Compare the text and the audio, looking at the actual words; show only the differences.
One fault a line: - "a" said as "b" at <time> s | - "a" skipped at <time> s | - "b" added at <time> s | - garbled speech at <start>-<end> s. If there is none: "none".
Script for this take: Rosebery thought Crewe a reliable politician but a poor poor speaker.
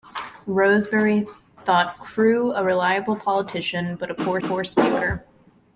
none